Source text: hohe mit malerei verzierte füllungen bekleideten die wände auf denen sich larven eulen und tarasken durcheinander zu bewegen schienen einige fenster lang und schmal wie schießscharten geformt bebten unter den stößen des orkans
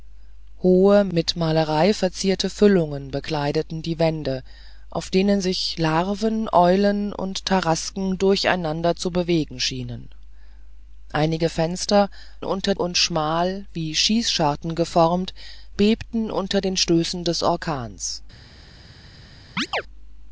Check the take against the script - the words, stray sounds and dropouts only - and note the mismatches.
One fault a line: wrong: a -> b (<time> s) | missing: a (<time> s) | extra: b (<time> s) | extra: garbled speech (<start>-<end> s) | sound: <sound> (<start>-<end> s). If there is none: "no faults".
wrong: lang -> unter (12.4 s)
sound: chirp (19.6-19.8 s)